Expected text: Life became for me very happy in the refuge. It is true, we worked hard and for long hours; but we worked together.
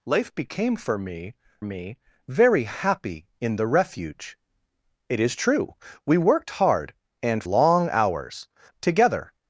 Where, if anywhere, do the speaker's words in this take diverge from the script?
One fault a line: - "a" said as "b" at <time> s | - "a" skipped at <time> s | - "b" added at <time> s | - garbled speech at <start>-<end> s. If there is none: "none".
- "me" added at 1.6 s
- "for" skipped at 7.4 s
- "but we worked" skipped at 8.5 s